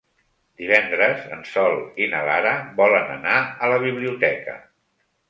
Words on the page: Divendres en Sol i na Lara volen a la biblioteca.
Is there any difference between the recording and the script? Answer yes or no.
yes